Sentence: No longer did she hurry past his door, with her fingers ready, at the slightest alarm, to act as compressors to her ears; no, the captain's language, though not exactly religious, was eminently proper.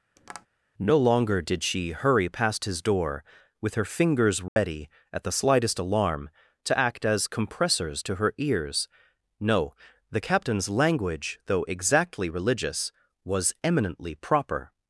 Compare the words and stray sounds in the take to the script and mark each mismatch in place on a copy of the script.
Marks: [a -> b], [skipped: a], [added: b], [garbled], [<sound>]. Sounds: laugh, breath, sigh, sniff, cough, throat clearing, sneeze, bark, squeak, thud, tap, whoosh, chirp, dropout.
[tap] No longer did she hurry past his door, with her fingers ready, [dropout] at the slightest alarm, to act as compressors to her ears; no, the captain's language, though [skipped: not] exactly religious, was eminently proper.